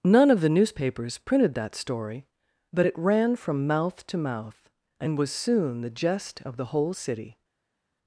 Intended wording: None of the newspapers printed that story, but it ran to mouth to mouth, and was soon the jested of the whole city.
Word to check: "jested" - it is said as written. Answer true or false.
false